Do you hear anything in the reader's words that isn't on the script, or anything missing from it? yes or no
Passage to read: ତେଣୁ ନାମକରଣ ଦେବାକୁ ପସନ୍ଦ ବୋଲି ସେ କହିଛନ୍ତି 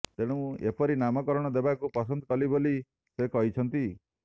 yes